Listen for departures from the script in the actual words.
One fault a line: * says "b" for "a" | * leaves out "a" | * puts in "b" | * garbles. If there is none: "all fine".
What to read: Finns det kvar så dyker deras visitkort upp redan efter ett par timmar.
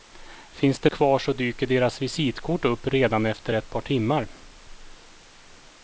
all fine